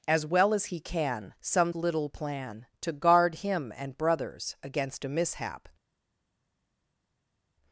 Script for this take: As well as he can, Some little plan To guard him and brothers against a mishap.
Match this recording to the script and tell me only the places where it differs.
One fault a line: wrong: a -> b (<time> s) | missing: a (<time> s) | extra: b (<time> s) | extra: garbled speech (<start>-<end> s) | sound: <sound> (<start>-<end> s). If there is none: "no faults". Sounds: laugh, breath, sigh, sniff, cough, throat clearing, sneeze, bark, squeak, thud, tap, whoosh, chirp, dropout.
no faults